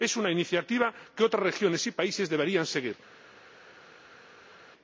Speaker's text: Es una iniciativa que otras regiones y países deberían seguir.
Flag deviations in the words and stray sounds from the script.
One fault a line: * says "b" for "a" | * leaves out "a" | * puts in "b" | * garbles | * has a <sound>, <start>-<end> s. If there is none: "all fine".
all fine